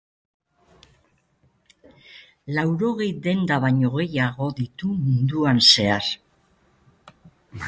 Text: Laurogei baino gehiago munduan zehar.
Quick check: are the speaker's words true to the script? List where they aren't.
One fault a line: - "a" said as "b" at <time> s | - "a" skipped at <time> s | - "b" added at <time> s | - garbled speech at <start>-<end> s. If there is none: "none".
- "denda" added at 3.3 s
- "ditu" added at 4.6 s